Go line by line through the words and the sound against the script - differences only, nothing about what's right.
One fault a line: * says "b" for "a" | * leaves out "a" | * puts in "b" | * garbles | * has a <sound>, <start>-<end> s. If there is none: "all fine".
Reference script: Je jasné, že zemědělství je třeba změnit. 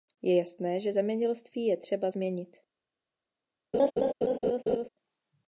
* has a laugh, 3.7-4.9 s